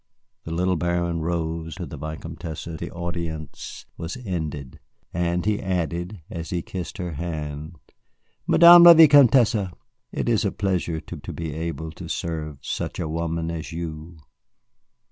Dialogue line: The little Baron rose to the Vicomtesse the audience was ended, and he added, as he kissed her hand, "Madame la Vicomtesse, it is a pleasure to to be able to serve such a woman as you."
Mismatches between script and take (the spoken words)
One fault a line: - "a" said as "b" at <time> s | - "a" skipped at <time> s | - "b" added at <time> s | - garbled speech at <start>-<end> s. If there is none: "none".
none